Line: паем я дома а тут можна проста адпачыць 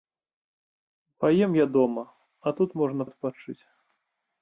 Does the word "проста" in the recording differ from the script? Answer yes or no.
yes